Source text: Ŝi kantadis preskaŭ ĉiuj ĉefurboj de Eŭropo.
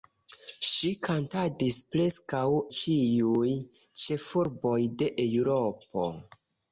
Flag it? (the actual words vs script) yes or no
no